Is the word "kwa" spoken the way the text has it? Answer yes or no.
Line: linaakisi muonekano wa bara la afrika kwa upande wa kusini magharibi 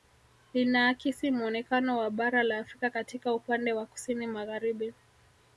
no